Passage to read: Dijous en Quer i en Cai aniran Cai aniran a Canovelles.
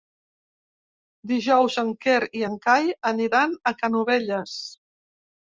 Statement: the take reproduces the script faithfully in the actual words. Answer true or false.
false